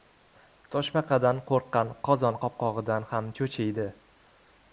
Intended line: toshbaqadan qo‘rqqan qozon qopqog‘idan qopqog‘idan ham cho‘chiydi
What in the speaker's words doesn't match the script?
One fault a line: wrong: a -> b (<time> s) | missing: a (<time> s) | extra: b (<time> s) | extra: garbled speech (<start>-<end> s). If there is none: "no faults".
missing: qopqog‘idan (3.1 s)